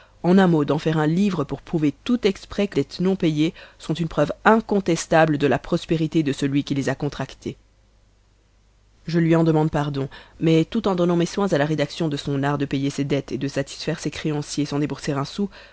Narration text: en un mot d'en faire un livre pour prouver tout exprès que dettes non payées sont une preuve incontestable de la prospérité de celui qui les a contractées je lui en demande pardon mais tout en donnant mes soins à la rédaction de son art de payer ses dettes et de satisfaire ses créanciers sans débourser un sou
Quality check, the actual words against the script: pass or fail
pass